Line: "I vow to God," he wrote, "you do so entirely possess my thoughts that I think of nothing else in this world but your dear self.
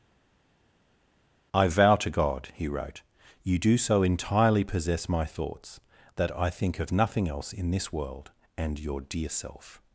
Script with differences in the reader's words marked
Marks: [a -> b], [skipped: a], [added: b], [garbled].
"I vow to God," he wrote, "you do so entirely possess my thoughts that I think of nothing else in this world [but -> and] your dear self.